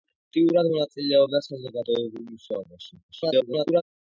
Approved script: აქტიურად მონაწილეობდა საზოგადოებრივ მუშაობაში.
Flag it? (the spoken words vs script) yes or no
yes